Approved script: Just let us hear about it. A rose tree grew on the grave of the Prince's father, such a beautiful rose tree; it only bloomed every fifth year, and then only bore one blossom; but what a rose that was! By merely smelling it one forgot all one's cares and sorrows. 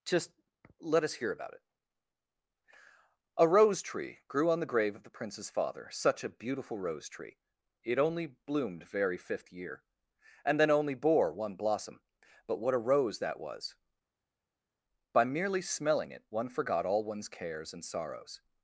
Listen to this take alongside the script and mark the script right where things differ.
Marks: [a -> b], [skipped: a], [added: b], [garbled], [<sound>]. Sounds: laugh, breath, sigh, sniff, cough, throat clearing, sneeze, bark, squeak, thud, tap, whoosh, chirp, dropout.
Just let us hear about it. A rose tree grew on the grave of the Prince's father, such a beautiful rose tree; it only bloomed [every -> very] fifth year, and then only bore one blossom; but what a rose that was! By merely smelling it one forgot all one's cares and sorrows.